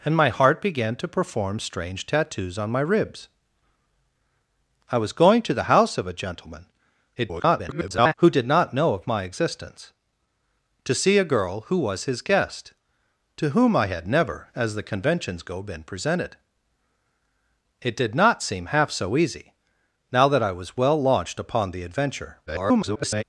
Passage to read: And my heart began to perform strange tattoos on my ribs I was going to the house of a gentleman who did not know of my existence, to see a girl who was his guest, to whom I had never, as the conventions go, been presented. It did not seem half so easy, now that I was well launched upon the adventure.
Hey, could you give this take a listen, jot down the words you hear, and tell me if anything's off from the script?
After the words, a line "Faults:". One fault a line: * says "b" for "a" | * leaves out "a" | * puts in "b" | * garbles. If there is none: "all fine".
And my heart began to perform strange tattoos on my ribs I was going to the house of a gentleman [garbled] who did not know of my existence, to see a girl who was his guest, to whom I had never, as the conventions go, been presented. It did not seem half so easy, now that I was well launched upon the adventure. [garbled]
Faults:
* garbles
* garbles